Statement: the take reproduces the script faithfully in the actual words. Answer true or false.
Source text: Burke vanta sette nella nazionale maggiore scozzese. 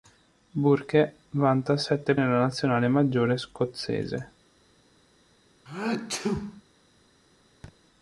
true